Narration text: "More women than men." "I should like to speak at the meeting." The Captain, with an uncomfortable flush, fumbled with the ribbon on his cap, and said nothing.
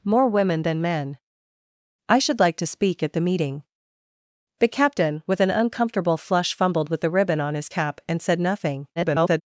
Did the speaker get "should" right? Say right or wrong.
right